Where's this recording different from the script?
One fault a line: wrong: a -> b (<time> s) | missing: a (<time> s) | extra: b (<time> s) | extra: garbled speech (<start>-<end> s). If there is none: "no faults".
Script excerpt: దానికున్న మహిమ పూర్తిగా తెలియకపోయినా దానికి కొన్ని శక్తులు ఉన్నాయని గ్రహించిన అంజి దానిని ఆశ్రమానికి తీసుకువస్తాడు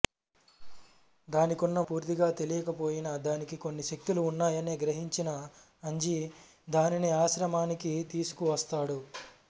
missing: మహిమ (1.8 s)